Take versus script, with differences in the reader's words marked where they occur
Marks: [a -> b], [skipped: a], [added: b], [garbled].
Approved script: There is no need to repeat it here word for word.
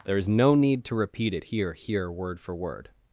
There is no need to repeat it here [added: here] word for word.